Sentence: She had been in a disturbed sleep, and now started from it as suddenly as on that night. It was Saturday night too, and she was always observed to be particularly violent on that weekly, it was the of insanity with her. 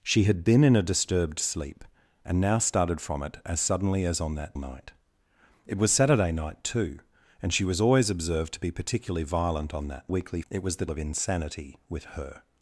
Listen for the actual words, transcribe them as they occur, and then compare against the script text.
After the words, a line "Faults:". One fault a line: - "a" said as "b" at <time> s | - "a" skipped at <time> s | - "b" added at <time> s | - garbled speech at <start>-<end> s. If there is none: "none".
She had been in a disturbed sleep, and now started from it as suddenly as on that night. It was Saturday night too, and she was always observed to be particularly violent on that weekly, it was the of insanity with her.
Faults:
none